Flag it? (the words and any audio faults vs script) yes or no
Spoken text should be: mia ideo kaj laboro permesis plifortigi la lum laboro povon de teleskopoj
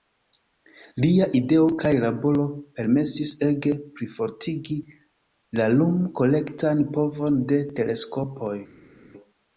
yes